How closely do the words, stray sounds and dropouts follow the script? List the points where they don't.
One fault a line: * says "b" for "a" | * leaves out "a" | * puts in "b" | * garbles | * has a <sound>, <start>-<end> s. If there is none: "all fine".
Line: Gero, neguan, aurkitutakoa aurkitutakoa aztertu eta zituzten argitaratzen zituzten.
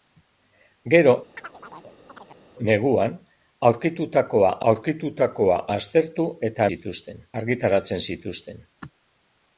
* has a chirp, 1.4-2.4 s